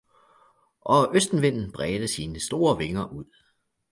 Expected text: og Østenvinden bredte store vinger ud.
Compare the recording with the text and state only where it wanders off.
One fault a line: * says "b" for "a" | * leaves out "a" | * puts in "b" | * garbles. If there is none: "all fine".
* puts in "sine"